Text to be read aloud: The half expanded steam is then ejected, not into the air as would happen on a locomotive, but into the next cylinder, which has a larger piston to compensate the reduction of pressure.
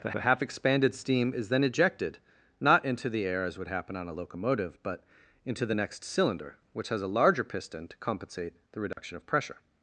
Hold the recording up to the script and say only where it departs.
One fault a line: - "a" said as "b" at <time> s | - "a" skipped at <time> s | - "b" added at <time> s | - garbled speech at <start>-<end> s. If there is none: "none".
- "the" added at 0.1 s